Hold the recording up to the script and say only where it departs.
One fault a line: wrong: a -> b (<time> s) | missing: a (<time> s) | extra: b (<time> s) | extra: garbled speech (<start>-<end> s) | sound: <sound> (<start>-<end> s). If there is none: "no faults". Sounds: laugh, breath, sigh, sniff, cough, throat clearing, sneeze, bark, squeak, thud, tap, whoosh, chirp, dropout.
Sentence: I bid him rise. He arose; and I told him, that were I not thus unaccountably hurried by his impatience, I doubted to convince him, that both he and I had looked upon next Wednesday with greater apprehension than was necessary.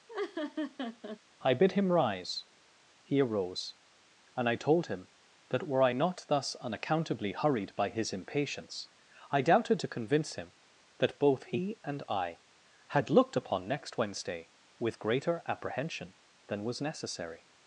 sound: laugh (0.1-1.2 s)